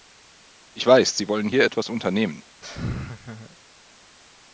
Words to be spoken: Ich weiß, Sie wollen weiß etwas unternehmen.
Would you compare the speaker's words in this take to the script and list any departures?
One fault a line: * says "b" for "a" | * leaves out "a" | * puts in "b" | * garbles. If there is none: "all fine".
* says "hier" for "weiß"